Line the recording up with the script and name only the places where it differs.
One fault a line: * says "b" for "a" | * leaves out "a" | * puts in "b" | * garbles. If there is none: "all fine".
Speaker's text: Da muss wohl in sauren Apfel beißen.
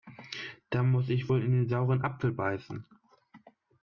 * puts in "ich"
* puts in "den"